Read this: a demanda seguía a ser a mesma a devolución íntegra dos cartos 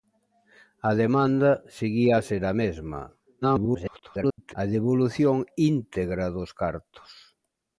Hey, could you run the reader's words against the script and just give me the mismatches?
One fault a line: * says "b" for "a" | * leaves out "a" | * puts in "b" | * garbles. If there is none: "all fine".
* garbles